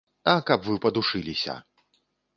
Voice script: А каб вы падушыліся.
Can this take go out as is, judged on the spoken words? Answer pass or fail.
pass